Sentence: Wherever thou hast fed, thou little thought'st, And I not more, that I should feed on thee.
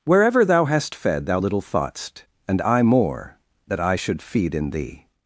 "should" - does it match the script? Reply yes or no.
yes